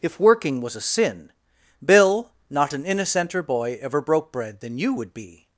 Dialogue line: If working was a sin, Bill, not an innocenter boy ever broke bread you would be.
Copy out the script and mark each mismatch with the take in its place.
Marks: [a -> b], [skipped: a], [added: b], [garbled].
If working was a sin, Bill, not an innocenter boy ever broke bread [added: than] you would be.